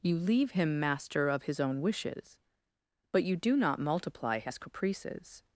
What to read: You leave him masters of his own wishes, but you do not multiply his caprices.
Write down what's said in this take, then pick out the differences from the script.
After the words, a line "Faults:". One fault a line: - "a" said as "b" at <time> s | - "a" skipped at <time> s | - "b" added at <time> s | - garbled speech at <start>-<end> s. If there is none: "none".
You leave him master of his own wishes, but you do not multiply his caprices.
Faults:
- "masters" said as "master" at 0.8 s